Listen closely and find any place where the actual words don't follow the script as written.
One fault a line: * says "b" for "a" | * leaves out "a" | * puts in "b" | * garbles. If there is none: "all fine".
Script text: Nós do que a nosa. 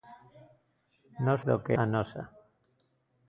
all fine